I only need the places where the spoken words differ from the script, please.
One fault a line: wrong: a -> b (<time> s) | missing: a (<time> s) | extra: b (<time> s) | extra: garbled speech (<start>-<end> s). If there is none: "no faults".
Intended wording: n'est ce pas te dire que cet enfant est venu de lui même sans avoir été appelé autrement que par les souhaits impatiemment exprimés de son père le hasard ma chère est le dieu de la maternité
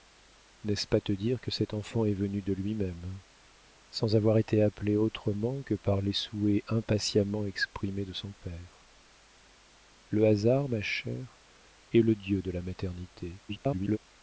extra: garbled speech (13.5-14.0 s)